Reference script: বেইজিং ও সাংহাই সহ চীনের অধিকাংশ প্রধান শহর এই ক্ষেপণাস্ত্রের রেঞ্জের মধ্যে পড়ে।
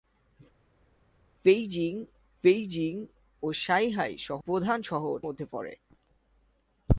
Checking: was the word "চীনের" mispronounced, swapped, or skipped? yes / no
yes